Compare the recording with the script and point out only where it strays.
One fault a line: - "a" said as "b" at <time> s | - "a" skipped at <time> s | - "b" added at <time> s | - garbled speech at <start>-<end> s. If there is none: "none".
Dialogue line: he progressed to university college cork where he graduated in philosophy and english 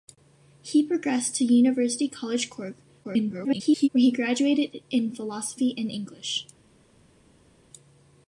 - garbled speech at 3.0-3.9 s